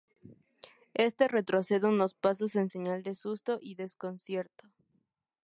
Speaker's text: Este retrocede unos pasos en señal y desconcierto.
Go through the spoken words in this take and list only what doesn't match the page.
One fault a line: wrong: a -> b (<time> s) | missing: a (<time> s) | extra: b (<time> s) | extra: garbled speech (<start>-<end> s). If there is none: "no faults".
extra: de susto (3.0 s)